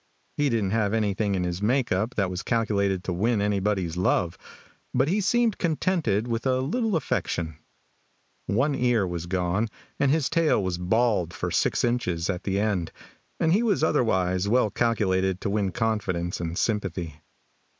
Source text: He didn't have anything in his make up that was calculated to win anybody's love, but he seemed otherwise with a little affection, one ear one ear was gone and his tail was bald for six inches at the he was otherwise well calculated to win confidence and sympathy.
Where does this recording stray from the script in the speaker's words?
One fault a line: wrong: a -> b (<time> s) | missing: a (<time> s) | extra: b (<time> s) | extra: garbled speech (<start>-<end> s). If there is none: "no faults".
wrong: otherwise -> contented (5.6 s)
missing: one ear (9.1 s)
extra: end and (12.6 s)